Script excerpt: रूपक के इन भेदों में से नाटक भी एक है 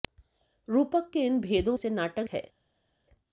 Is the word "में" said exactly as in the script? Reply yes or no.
no